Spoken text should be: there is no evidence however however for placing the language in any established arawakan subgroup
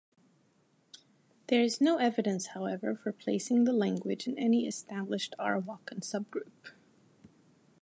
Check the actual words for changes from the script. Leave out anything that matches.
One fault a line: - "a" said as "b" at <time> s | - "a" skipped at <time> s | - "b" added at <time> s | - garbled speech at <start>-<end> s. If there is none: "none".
- "however" skipped at 3.0 s